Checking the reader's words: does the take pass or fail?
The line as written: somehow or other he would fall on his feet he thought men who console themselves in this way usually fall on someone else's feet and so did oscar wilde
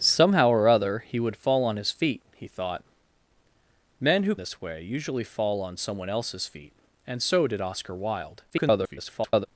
fail